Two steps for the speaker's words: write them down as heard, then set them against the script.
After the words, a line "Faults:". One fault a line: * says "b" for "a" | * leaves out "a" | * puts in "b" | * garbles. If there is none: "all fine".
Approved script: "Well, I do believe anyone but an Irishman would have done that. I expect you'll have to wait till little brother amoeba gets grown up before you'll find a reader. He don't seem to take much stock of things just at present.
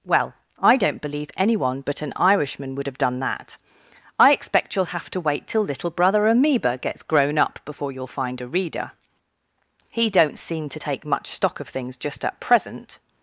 "Well, I don't believe anyone but an Irishman would have done that. I expect you'll have to wait till little brother amoeba gets grown up before you'll find a reader. He don't seem to take much stock of things just at present.
Faults:
* says "don't" for "do"